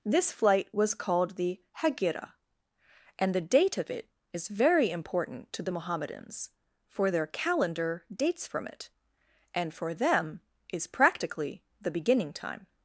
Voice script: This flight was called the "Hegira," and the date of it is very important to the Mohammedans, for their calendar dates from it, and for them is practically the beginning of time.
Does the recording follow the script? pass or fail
fail